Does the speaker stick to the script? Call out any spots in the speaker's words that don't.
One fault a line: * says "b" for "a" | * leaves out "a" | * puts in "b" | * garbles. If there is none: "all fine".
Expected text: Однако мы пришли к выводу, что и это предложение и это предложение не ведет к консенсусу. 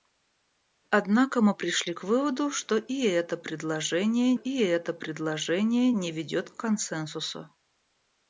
all fine